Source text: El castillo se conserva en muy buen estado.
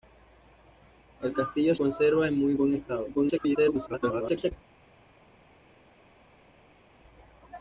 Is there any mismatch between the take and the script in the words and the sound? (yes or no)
yes